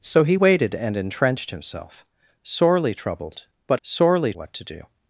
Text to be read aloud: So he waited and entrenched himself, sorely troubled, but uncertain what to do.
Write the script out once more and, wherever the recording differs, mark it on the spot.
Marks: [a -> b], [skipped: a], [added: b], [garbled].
So he waited and entrenched himself, sorely troubled, but [uncertain -> sorely] what to do.